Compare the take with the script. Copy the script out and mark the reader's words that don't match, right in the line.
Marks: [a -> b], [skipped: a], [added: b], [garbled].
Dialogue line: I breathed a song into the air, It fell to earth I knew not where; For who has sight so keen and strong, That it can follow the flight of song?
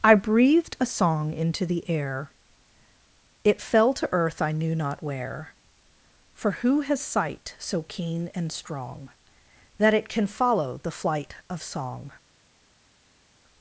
I breathed a song into the air, It fell to earth I knew not where; For who has sight so keen and strong, That it can follow the flight of song?